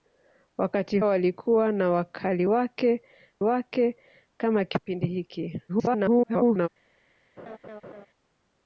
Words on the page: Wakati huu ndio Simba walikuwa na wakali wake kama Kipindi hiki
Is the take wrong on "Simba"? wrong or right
wrong